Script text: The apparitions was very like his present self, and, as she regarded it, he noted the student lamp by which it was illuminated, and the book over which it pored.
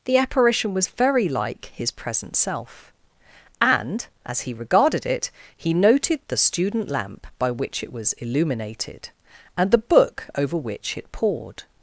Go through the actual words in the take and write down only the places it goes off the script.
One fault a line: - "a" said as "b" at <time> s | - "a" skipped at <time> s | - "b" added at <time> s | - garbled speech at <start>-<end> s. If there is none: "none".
- "apparitions" said as "apparition" at 0.2 s
- "she" said as "he" at 4.4 s